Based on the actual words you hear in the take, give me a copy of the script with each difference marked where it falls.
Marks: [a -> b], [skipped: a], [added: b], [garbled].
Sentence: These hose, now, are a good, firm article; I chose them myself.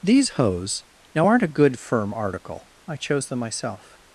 These hose, now, [are -> aren't] a good, firm article; I chose them myself.